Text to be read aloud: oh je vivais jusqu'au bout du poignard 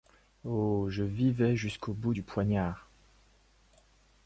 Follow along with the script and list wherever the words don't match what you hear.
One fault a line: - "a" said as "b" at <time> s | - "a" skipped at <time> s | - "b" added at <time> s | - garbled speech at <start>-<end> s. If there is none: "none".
none